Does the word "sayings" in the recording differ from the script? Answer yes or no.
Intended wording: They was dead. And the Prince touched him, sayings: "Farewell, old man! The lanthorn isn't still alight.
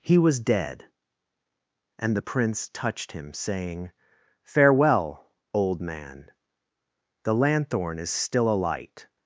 yes